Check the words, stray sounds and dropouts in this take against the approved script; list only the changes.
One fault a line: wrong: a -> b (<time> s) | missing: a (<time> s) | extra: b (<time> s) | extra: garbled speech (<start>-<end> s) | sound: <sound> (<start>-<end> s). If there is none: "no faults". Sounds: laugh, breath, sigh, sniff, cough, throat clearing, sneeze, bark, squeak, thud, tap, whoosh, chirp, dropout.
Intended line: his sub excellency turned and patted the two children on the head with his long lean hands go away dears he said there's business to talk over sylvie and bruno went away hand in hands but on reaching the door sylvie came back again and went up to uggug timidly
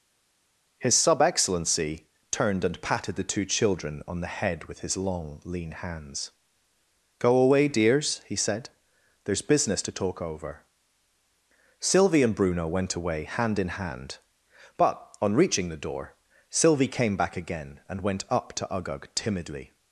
wrong: hands -> hand (13.7 s)